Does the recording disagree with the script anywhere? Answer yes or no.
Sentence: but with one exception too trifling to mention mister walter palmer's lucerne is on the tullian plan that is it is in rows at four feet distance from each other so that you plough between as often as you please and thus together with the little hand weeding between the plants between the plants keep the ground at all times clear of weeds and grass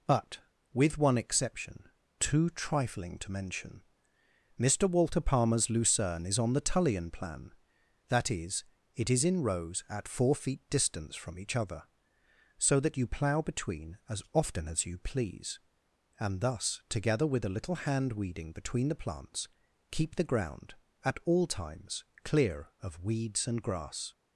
yes